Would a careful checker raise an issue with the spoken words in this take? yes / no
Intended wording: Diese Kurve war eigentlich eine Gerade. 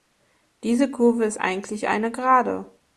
yes